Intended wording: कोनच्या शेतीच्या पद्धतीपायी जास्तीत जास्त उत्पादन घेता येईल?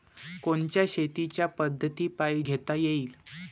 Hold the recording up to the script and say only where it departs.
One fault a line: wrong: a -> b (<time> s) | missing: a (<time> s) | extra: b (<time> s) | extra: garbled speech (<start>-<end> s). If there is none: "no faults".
missing: जास्तीत जास्त उत्पादन (2.4 s)